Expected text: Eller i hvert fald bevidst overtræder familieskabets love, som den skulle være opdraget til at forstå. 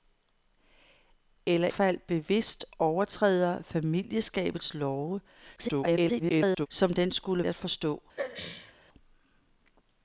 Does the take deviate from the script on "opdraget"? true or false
true